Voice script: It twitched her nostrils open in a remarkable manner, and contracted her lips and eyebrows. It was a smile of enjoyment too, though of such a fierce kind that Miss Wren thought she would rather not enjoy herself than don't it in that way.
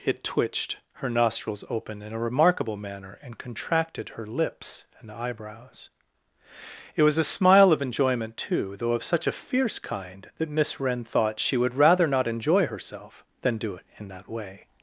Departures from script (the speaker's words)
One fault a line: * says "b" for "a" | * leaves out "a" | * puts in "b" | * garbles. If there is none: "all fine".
* says "do" for "don't"